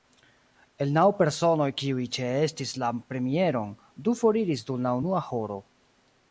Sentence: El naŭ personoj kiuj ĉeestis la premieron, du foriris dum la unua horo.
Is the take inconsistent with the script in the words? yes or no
no